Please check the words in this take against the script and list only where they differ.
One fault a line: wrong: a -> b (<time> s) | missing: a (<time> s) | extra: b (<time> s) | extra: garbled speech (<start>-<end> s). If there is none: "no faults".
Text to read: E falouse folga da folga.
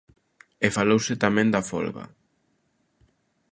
wrong: folga -> tamén (1.2 s)